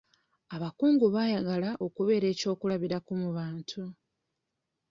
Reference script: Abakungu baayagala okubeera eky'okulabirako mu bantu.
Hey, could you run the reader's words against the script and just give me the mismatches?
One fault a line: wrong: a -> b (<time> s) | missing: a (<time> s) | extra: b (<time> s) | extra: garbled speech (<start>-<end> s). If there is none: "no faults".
no faults